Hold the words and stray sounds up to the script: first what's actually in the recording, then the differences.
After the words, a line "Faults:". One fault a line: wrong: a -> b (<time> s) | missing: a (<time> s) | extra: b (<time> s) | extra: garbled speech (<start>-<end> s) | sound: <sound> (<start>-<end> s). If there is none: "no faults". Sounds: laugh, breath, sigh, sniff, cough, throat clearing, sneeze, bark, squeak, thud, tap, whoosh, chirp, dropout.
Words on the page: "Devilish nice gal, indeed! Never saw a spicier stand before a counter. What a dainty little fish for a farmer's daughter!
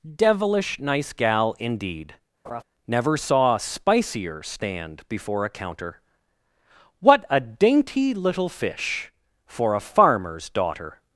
"Devilish nice gal, indeed! Never saw a spicier stand before a counter. What a dainty little fish for a farmer's daughter!
Faults:
sound: laugh (2.4-2.6 s)